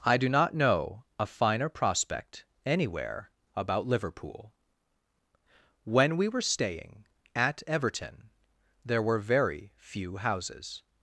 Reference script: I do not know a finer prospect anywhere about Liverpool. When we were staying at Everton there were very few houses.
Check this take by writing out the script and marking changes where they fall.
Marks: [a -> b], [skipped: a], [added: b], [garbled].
I do not know a finer prospect anywhere about Liverpool. When we were staying at Everton there were very few houses.